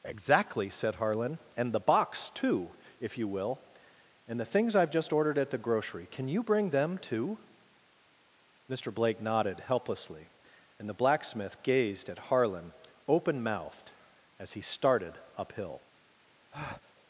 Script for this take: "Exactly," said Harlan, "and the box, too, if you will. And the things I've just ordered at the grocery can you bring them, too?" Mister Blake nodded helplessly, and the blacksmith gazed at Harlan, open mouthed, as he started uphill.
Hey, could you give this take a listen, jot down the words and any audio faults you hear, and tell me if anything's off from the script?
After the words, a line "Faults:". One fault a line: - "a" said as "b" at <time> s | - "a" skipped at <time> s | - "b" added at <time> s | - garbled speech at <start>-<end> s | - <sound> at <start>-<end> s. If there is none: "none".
"Exactly," said Harlan, "and the box, too, if you will. And the things I've just ordered at the grocery can you bring them, too?" Mister Blake nodded helplessly, and the blacksmith gazed at Harlan, open mouthed, as he started uphill.
Faults:
- breath at 16.5-16.9 s